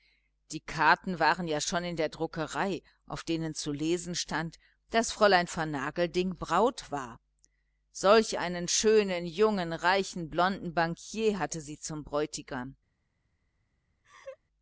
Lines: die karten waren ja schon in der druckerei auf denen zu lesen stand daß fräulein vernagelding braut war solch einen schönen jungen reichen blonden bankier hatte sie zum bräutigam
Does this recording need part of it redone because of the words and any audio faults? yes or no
yes